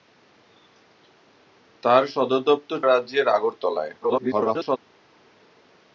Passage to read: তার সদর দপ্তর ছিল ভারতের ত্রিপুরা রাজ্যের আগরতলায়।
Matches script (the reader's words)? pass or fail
fail